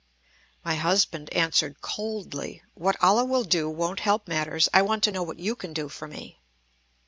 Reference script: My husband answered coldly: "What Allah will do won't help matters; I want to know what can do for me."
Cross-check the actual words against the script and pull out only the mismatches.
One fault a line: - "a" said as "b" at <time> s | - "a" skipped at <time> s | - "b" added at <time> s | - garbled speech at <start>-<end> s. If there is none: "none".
- "you" added at 5.4 s